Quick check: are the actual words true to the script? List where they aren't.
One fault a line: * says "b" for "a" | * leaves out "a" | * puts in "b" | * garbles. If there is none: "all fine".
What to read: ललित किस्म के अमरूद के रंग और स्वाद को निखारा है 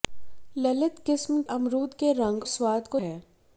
* leaves out "के"
* leaves out "और"
* leaves out "निखारा"